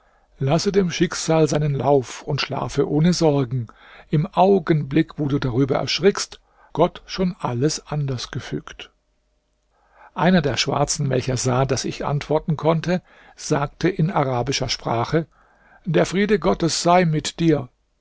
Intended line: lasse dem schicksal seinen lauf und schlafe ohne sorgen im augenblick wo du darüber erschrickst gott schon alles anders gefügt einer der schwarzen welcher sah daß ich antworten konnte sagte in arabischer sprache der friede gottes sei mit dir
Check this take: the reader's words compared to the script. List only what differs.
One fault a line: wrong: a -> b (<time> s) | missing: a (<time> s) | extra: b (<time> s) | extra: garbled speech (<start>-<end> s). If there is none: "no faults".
no faults